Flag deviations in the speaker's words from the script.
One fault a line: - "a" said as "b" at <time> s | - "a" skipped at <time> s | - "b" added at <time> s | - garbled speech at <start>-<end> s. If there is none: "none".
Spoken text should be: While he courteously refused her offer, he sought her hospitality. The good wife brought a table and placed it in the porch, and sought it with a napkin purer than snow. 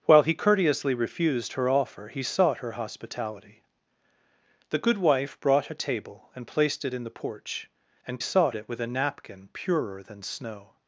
none